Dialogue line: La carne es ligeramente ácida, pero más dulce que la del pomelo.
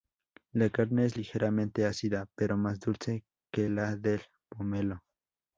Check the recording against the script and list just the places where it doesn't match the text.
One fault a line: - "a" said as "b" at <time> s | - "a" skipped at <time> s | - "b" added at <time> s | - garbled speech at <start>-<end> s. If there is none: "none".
none